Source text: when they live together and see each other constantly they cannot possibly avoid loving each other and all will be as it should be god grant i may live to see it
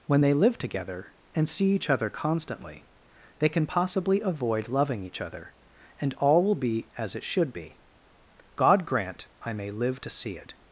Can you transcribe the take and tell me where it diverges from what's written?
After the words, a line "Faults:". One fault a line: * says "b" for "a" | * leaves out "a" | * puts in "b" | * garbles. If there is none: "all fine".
when they live together and see each other constantly they can possibly avoid loving each other and all will be as it should be god grant i may live to see it
Faults:
* says "can" for "cannot"